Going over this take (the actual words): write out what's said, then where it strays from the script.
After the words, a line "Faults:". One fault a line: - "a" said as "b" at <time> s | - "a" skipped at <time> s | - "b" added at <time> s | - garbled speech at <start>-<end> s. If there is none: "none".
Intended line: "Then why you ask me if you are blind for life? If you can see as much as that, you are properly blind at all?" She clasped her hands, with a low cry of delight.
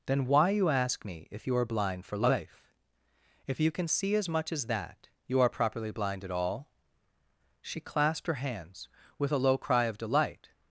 "Then why you ask me if you are blind for life? If you can see as much as that, you are properly blind at all?" She clasped her hands, with a low cry of delight.
Faults:
none